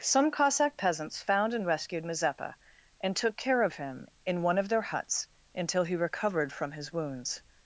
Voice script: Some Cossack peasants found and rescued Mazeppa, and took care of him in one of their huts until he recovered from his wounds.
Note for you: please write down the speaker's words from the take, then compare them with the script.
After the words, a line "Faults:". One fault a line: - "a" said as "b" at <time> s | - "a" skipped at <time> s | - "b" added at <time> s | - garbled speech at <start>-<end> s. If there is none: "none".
Some Cossack peasants found and rescued Mazeppa, and took care of him in one of their huts until he recovered from his wounds.
Faults:
none